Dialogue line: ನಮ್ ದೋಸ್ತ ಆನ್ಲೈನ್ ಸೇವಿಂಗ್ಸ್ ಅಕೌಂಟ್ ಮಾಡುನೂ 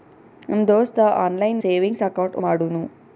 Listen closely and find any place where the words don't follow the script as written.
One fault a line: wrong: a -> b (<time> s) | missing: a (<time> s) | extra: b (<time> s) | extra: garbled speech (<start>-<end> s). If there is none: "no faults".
no faults